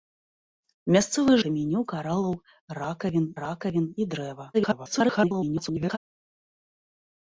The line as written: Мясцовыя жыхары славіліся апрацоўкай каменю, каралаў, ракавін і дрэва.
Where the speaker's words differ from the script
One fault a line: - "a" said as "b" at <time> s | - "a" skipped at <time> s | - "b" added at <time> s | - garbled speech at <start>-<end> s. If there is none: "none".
- "жыхары славіліся апрацоўкай" skipped at 1.4 s
- "ракавін" added at 3.4 s
- garbled speech at 4.5-6.0 s